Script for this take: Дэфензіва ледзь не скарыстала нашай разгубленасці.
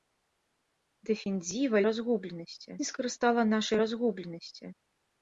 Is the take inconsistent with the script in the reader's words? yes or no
yes